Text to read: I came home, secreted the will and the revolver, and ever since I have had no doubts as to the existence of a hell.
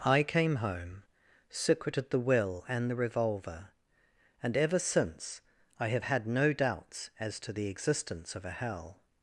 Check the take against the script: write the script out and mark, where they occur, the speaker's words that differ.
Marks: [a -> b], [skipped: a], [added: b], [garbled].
I came home, secreted the will and the revolver, and ever since I have had no doubts as to the existence of a hell.